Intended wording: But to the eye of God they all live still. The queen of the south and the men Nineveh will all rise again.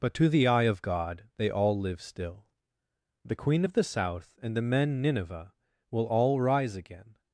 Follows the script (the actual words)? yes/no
yes